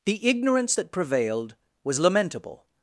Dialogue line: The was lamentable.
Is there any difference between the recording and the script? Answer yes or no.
yes